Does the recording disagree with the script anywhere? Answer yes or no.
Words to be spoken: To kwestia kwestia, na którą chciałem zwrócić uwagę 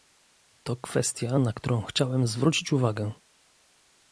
yes